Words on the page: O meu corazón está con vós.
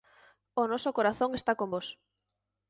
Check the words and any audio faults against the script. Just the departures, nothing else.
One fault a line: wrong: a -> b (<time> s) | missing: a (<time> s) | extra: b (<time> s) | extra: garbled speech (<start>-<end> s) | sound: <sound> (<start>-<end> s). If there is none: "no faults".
wrong: meu -> noso (0.7 s)